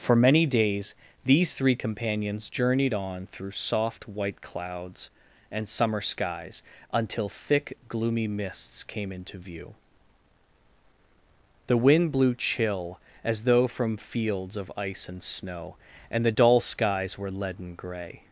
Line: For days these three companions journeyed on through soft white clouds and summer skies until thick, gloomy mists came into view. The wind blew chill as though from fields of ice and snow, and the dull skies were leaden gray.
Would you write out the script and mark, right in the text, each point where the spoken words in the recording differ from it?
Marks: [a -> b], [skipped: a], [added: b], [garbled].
For [added: many] days these three companions journeyed on through soft white clouds and summer skies until thick, gloomy mists came into view. The wind blew chill as though from fields of ice and snow, and the dull skies were leaden gray.